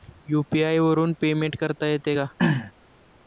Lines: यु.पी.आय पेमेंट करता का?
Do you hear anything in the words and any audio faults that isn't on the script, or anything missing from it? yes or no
yes